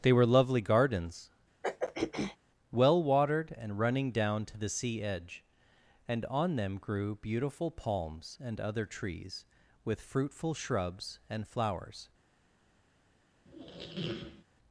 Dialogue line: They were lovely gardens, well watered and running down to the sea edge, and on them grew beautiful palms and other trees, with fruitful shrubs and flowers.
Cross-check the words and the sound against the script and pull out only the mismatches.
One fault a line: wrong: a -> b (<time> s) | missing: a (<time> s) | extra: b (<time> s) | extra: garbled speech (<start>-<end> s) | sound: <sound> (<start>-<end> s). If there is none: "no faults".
sound: throat clearing (1.6-2.4 s)
sound: squeak (13.4-14.4 s)